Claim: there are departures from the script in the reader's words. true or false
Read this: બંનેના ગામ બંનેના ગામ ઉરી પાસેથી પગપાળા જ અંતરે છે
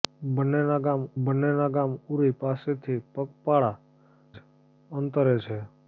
false